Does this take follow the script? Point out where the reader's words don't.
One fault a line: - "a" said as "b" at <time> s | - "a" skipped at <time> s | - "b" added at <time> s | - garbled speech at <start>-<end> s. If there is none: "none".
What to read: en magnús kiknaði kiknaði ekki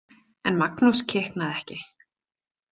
- "kiknaði" skipped at 1.6 s